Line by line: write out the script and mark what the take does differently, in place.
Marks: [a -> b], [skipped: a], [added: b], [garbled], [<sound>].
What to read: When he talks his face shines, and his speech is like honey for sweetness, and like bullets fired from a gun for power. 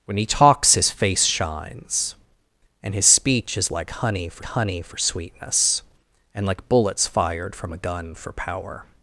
When he talks his face shines, and his speech is like honey for [added: honey for] sweetness, and like bullets fired from a gun for power.